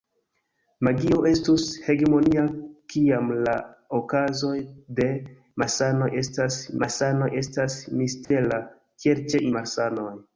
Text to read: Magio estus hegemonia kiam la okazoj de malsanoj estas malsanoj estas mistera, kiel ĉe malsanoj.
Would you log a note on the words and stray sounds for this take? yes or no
yes